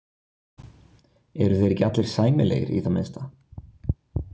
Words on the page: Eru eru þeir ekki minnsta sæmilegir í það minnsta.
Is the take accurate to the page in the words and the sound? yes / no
no